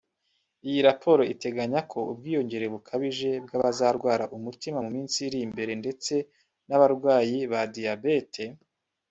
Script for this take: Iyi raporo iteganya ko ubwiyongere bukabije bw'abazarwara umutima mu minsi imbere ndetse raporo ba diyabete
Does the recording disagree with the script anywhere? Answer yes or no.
yes